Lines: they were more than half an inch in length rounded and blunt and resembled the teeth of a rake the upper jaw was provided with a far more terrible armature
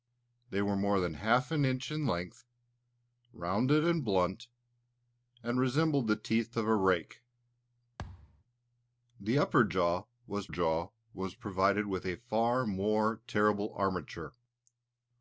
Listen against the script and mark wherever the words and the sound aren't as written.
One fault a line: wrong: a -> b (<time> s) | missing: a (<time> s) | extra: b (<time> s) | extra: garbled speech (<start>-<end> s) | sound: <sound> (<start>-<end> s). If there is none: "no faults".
sound: thud (8.0-8.4 s)
extra: jaw was (10.5 s)